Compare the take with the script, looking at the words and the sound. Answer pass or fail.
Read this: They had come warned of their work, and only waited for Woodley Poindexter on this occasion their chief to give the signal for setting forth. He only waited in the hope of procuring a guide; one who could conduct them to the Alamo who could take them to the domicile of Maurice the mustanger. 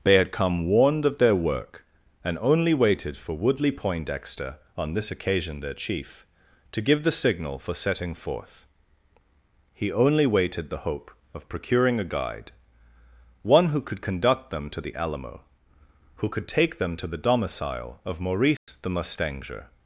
fail